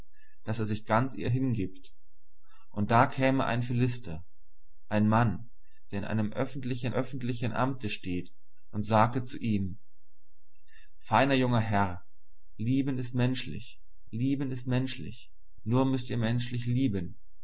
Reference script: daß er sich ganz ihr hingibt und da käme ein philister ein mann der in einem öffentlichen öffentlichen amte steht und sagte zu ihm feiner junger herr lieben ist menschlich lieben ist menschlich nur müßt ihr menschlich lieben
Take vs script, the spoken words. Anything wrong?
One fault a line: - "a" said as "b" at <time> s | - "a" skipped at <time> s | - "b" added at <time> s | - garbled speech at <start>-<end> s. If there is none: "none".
none